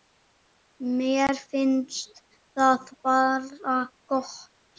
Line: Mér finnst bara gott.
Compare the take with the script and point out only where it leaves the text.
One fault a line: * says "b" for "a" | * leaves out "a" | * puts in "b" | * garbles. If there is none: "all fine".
* puts in "það"